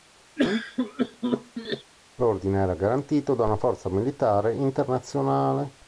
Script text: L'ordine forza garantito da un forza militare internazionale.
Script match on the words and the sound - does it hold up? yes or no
no